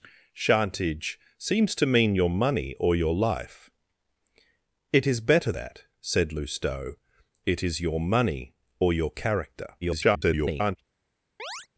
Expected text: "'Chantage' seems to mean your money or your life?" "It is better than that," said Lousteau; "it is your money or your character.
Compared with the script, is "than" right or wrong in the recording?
wrong